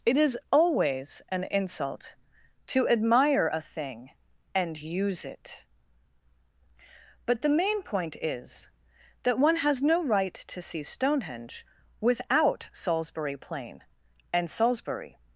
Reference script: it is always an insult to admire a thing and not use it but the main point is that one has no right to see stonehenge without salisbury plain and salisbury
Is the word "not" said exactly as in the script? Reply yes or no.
no